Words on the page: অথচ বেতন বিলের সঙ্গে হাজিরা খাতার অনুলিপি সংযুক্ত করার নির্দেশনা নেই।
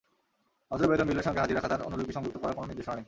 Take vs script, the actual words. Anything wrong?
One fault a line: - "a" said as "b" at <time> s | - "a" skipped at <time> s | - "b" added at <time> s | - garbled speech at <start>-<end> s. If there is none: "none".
- "কোনো" added at 2.5 s